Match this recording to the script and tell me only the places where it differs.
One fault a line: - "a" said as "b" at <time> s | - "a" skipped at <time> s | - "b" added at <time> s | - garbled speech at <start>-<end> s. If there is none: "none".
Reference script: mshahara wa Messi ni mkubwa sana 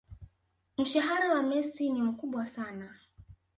none